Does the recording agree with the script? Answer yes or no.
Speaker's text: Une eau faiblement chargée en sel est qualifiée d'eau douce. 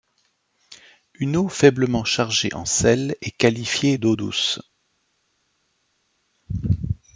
yes